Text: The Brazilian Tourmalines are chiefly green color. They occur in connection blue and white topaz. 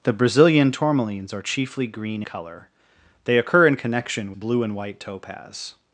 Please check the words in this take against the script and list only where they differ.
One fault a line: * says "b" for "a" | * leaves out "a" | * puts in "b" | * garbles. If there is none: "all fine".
all fine